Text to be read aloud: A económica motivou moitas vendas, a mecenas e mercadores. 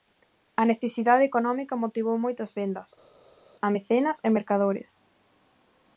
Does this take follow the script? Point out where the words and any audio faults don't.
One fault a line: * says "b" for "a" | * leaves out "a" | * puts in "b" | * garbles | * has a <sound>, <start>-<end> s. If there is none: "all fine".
* puts in "necesidade"